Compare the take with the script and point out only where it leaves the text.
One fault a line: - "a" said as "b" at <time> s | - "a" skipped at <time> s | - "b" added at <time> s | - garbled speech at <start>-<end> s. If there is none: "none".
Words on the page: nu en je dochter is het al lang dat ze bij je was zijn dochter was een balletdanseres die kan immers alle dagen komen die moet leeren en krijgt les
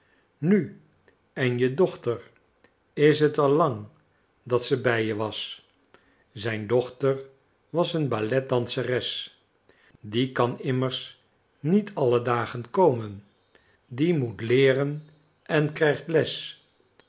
- "niet" added at 11.6 s